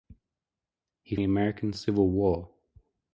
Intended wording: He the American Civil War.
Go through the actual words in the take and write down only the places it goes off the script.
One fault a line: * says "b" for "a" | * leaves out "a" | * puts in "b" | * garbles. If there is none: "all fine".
all fine